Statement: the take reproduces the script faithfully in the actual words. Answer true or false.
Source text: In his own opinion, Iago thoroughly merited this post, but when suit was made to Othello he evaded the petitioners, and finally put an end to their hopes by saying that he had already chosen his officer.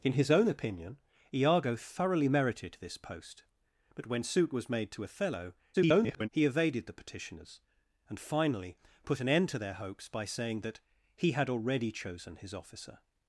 false